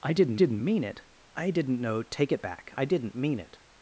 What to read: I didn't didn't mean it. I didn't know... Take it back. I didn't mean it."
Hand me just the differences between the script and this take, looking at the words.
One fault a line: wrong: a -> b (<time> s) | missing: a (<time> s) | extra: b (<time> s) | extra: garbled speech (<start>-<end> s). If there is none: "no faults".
no faults